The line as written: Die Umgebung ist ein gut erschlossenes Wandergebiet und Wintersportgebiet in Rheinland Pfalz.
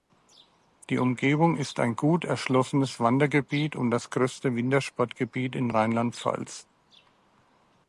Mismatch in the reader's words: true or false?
true